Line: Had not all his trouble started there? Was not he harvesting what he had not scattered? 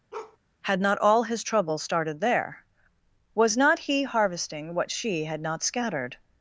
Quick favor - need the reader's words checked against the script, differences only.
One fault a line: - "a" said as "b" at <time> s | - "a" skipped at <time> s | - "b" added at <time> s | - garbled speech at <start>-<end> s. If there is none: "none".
- "he" said as "she" at 4.9 s